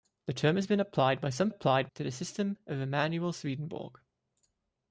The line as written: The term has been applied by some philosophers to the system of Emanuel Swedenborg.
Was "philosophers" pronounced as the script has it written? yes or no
no